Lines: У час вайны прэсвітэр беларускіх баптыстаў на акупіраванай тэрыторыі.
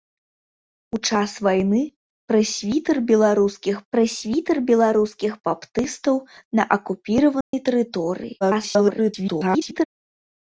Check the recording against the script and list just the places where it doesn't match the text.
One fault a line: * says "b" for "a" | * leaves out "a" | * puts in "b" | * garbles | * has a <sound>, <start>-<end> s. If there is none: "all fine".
* puts in "прэсвітэр беларускіх"
* has a dropout, 7.4-7.5 s
* garbles